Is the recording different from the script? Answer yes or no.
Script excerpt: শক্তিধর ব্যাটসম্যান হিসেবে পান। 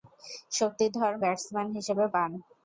no